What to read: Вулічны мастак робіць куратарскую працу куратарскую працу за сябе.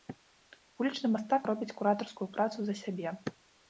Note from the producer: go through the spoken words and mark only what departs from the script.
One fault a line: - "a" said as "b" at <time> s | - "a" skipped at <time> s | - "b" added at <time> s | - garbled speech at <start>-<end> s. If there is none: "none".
- "куратарскую працу" skipped at 2.6 s